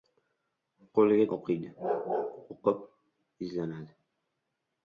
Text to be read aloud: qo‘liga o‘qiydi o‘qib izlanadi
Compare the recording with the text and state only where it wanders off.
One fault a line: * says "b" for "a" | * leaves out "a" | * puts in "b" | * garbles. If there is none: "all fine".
all fine